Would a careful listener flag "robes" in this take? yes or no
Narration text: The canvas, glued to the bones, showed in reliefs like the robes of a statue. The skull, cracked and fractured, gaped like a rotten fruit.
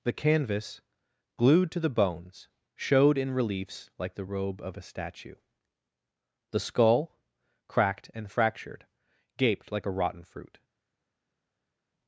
yes